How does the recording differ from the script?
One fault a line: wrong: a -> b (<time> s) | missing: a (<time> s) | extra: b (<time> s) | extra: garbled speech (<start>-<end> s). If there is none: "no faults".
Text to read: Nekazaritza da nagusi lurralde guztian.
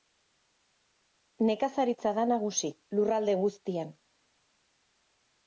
no faults